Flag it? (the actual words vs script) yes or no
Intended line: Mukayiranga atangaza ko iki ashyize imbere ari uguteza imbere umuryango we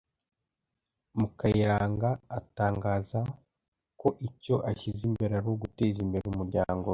yes